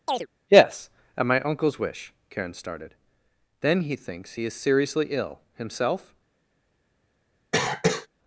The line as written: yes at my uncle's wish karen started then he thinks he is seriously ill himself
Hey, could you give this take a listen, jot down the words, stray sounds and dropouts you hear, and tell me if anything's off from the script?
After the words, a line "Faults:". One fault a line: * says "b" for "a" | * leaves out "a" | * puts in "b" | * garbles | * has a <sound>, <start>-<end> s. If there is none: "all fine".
yes at my uncle's wish karen started then he thinks he is seriously ill himself
Faults:
* has a chirp, 0.1-0.3 s
* has a cough, 7.5-8.1 s